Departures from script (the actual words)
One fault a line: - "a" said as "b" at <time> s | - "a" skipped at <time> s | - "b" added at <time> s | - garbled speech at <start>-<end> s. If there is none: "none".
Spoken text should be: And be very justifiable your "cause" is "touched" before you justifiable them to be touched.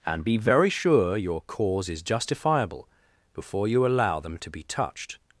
- "justifiable" said as "sure" at 0.7 s
- "touched" said as "justifiable" at 2.0 s
- "justifiable" said as "allow" at 3.9 s